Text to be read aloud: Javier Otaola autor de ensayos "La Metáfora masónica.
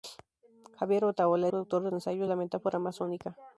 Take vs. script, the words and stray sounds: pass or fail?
pass